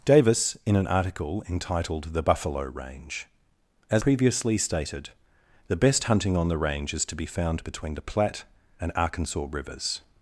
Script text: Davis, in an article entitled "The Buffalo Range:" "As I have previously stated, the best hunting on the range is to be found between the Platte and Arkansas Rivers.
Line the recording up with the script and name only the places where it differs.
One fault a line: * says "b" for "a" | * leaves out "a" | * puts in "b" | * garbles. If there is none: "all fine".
* leaves out "I have"